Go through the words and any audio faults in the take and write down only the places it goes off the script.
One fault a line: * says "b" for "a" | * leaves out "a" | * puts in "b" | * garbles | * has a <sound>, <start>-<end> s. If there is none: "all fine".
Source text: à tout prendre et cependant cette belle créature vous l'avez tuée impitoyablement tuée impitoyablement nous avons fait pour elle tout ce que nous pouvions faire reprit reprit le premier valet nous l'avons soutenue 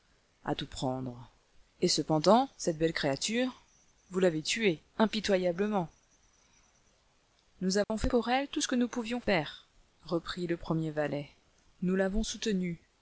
* leaves out "tuée impitoyablement"
* has a dropout, 7.8-7.9 s
* leaves out "reprit"